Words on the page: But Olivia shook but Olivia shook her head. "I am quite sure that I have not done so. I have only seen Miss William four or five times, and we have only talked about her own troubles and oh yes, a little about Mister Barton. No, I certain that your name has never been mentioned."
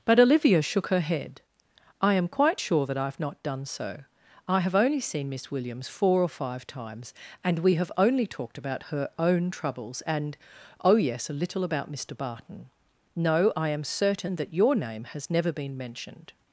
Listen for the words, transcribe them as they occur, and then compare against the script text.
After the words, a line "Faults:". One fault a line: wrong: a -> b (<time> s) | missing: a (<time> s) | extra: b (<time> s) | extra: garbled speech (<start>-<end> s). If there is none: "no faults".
But Olivia shook her head. "I am quite sure that I have not done so. I have only seen Miss Williams four or five times, and we have only talked about her own troubles and oh yes, a little about Mister Barton. No, I am certain that your name has never been mentioned."
Faults:
missing: but Olivia shook (0.9 s)
wrong: William -> Williams (5.5 s)
extra: am (13.7 s)